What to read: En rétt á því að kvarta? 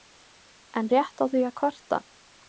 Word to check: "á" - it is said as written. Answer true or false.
true